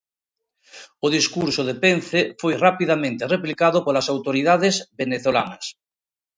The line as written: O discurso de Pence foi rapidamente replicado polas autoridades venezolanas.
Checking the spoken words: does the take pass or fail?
pass